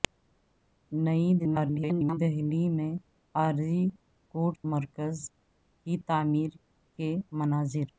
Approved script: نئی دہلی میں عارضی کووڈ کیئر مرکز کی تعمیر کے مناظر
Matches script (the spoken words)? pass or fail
fail